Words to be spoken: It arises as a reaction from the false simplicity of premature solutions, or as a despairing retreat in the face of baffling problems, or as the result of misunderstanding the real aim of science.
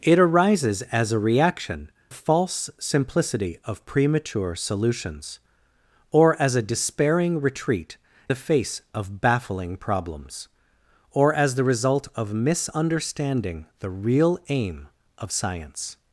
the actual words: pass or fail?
fail